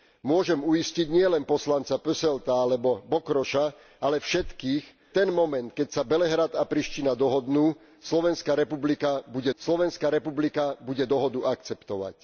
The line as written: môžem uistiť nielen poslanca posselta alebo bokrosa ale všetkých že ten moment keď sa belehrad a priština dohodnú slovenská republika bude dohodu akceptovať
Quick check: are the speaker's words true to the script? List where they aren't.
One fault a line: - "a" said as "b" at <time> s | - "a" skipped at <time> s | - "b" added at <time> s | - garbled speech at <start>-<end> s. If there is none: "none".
- "že" skipped at 4.8 s
- "slovenská republika bude" added at 9.5 s